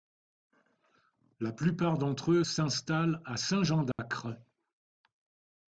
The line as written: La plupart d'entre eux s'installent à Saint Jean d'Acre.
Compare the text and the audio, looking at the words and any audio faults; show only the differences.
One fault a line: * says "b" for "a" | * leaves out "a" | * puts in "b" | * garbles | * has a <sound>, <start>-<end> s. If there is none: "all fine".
* has a dropout, 3.9-4.0 s